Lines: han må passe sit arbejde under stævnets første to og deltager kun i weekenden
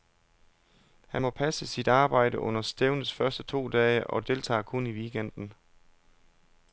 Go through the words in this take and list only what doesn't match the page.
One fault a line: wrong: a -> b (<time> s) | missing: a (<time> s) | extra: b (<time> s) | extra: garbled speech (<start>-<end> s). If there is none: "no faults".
extra: dage (3.7 s)